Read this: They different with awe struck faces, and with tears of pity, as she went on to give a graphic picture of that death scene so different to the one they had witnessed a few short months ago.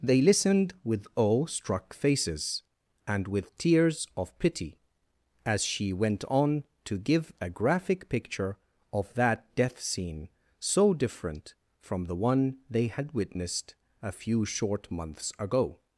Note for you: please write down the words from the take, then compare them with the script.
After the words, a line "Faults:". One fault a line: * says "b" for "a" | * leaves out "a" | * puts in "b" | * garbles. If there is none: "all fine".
They listened with awe struck faces, and with tears of pity, as she went on to give a graphic picture of that death scene so different from the one they had witnessed a few short months ago.
Faults:
* says "listened" for "different"
* says "from" for "to"